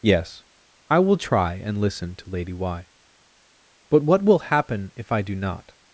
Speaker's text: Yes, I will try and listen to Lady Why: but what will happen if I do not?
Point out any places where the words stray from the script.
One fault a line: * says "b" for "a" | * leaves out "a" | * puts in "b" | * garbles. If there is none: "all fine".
all fine